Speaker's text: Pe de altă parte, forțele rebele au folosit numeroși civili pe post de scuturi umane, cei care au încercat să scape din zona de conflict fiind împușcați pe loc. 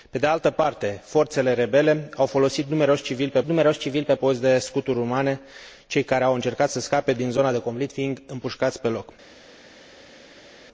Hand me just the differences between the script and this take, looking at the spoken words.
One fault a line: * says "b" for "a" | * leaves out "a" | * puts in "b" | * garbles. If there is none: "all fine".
* puts in "numeroși civili pe"